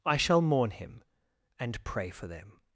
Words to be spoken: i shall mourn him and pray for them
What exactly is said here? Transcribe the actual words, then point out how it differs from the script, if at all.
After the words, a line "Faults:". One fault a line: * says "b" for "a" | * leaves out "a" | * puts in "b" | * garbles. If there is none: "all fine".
i shall mourn him and pray for them
Faults:
all fine